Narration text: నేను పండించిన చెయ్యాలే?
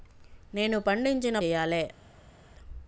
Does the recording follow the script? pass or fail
pass